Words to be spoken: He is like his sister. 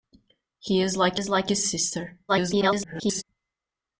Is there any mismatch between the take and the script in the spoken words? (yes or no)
yes